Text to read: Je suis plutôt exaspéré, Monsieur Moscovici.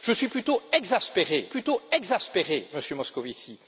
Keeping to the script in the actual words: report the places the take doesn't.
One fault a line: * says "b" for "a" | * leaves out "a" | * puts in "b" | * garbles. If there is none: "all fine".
* puts in "plutôt exaspéré"